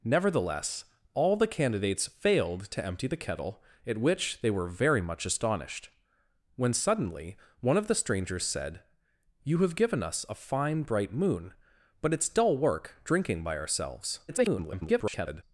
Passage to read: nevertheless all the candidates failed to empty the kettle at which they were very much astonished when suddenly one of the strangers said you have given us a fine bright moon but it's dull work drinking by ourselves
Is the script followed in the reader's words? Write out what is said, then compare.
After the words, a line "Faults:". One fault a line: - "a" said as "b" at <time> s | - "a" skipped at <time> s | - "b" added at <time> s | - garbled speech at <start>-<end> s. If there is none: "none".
nevertheless all the candidates failed to empty the kettle at which they were very much astonished when suddenly one of the strangers said you have given us a fine bright moon but it's dull work drinking by ourselves [garbled]
Faults:
- garbled speech at 14.3-15.4 s